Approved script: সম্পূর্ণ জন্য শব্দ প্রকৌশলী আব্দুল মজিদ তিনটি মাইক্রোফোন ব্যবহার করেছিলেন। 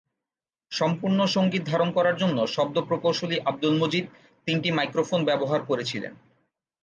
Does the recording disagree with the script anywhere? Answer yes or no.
yes